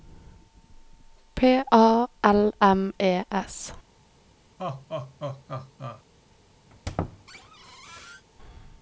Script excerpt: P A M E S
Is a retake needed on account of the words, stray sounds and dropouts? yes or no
yes